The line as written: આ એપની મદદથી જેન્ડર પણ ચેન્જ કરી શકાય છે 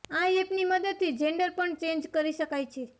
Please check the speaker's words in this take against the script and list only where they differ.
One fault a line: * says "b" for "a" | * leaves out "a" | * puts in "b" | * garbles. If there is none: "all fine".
all fine